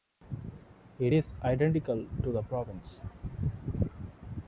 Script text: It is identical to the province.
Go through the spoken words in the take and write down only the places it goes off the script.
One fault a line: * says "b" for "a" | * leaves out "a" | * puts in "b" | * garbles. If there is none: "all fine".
all fine